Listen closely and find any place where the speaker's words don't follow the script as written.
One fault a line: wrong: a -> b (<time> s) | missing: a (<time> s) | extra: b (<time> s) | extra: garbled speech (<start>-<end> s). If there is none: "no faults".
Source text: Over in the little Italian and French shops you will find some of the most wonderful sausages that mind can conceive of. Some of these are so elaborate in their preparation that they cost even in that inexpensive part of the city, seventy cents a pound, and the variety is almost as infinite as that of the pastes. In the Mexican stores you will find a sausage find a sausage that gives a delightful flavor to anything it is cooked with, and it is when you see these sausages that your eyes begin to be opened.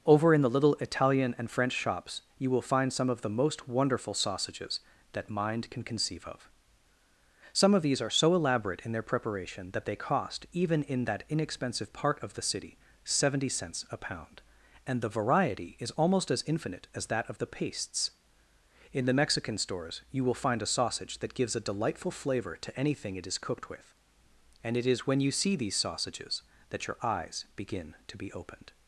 missing: find a sausage (21.2 s)